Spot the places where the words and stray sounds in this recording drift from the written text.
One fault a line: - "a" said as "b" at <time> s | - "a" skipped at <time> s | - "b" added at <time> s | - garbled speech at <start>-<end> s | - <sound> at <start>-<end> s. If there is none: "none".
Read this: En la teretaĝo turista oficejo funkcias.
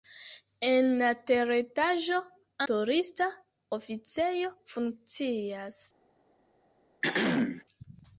- throat clearing at 7.0-7.6 s